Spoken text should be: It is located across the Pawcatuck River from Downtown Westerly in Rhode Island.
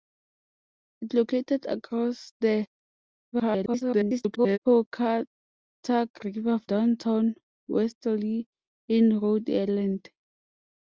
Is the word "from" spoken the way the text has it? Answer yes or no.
no